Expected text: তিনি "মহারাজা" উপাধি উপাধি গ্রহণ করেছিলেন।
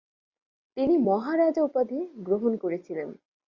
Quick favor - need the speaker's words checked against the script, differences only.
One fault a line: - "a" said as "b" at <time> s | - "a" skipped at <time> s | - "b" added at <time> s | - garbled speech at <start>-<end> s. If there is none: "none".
- "উপাধি" skipped at 2.0 s